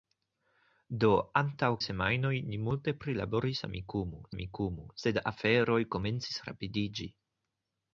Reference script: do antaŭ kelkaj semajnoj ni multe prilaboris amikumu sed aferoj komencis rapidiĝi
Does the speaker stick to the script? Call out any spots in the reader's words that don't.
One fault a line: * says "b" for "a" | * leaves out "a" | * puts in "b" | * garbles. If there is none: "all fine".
* leaves out "kelkaj"
* puts in "amikumu"